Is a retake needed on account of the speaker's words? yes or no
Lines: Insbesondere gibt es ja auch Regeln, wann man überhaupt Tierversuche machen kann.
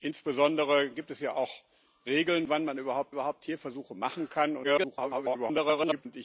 yes